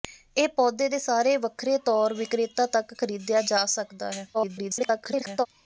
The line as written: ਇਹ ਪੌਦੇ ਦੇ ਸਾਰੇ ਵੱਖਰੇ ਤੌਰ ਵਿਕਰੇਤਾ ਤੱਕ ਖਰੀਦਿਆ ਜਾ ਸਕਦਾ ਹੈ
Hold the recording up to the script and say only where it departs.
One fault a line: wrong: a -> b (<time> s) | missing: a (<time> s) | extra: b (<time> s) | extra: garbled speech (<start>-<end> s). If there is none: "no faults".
extra: garbled speech (4.3-5.5 s)